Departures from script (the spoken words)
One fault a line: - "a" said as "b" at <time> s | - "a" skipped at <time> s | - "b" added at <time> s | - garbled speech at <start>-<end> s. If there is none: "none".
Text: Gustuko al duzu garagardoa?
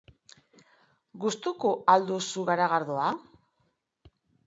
none